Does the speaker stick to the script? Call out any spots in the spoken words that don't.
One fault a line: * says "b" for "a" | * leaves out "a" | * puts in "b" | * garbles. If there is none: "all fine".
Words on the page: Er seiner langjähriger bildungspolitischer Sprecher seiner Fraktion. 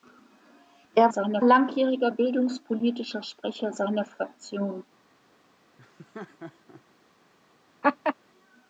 all fine